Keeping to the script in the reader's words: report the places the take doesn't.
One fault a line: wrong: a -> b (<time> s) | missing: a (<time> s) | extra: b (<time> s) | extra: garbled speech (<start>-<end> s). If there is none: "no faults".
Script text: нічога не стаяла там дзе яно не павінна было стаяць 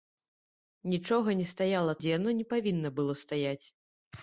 missing: там (1.9 s)